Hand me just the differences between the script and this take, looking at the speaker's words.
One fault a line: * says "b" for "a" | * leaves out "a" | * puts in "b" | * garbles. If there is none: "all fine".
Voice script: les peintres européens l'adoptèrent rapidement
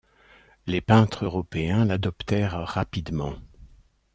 all fine